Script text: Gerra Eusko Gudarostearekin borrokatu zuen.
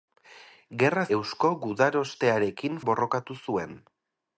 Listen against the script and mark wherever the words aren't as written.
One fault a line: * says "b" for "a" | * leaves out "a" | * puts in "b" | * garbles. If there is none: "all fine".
all fine